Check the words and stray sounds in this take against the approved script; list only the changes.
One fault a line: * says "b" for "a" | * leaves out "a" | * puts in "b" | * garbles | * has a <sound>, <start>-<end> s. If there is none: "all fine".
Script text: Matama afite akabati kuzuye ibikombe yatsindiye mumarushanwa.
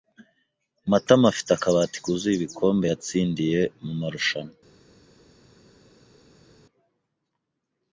all fine